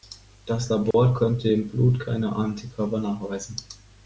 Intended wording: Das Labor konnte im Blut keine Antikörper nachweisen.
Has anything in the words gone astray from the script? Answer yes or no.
no